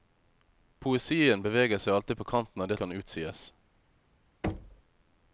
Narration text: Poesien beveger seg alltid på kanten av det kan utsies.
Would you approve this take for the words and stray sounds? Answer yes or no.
no